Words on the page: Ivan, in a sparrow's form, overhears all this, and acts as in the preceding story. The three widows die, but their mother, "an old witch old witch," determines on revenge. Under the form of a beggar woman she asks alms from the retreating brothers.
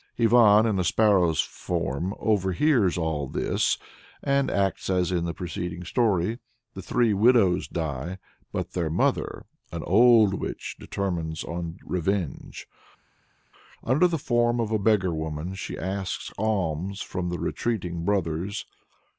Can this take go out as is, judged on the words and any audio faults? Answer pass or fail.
fail